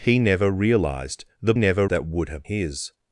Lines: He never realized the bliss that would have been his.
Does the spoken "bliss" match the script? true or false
false